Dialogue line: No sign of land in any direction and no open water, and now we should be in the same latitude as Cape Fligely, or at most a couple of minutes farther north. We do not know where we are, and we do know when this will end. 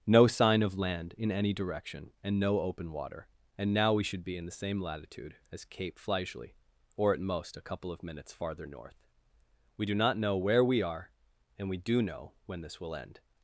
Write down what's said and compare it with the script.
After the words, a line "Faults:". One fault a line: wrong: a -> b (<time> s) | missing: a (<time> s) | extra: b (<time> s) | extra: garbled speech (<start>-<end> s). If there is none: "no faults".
No sign of land in any direction and no open water, and now we should be in the same latitude as Cape Fligely, or at most a couple of minutes farther north. We do not know where we are, and we do know when this will end.
Faults:
no faults